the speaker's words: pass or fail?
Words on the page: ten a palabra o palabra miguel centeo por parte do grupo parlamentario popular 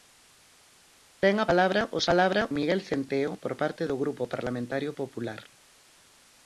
pass